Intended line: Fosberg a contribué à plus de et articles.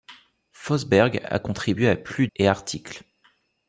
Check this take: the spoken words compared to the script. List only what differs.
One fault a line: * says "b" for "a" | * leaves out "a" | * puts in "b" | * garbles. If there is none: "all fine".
* leaves out "de"